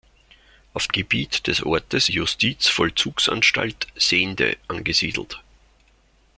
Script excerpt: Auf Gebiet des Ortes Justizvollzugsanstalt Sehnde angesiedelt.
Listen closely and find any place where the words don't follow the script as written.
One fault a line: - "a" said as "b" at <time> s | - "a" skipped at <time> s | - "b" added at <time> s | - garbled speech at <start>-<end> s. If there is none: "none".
none